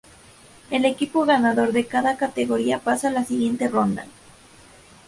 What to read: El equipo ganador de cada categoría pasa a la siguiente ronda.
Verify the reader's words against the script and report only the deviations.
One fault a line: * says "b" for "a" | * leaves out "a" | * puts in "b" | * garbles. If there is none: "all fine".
all fine